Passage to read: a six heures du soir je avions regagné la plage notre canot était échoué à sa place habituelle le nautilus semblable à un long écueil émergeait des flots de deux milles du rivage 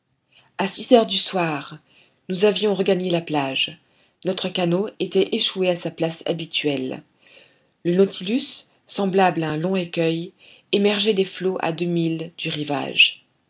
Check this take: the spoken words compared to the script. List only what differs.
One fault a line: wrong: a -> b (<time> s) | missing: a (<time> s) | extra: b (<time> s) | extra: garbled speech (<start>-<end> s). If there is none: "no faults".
wrong: je -> nous (2.3 s)
wrong: de -> à (11.6 s)